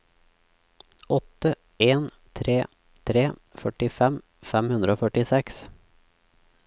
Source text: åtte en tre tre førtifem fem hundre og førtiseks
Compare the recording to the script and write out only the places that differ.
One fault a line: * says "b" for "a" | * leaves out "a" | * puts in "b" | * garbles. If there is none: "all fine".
all fine